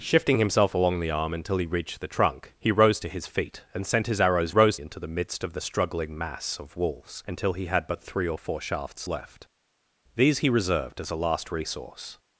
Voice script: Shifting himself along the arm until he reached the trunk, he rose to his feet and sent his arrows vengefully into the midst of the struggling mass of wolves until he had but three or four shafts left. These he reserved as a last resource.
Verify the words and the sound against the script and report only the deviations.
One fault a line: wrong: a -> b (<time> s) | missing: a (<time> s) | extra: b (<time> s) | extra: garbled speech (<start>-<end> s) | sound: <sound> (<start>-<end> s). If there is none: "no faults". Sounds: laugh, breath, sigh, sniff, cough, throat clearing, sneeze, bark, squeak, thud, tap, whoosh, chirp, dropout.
wrong: vengefully -> rose (4.5 s)